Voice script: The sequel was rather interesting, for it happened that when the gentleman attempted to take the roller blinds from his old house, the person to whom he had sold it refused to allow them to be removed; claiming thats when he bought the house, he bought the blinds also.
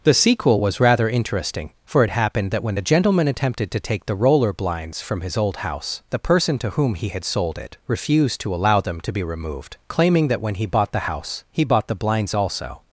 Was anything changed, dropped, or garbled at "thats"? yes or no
yes